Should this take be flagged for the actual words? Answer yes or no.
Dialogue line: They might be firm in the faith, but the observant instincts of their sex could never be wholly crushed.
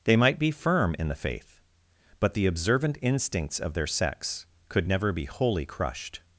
no